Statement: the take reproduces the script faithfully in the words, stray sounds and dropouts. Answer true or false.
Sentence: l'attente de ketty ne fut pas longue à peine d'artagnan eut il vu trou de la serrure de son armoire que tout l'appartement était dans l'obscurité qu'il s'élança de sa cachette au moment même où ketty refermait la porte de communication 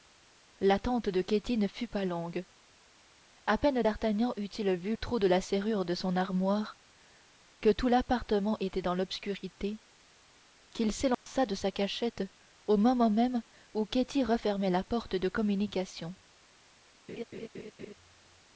false